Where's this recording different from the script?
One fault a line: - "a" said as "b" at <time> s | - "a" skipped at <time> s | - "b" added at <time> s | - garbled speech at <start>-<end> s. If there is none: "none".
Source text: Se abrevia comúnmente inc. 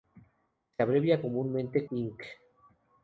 none